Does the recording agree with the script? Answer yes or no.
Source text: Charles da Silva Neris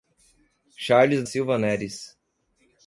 no